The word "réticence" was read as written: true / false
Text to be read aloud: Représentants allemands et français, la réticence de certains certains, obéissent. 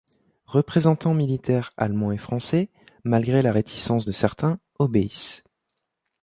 true